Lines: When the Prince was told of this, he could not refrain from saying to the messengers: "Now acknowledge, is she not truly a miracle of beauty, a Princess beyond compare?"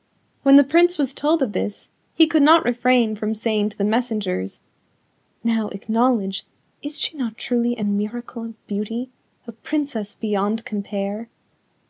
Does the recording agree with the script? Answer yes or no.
yes